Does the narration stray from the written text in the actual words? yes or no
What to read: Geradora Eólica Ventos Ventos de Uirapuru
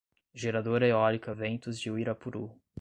yes